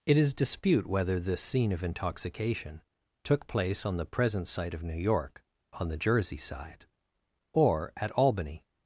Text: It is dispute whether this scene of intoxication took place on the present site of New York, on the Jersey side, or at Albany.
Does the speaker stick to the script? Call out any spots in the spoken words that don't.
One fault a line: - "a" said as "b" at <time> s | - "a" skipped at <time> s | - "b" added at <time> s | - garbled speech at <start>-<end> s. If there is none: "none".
none